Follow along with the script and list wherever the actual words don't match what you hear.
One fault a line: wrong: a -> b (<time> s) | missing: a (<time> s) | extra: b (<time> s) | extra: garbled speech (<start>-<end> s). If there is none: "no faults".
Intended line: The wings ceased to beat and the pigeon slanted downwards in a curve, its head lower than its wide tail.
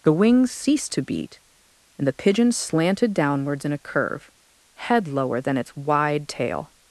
missing: its (4.3 s)